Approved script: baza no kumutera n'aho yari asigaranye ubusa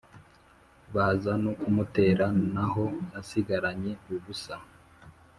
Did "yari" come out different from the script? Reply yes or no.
yes